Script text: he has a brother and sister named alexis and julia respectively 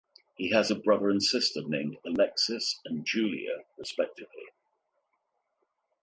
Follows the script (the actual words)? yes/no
yes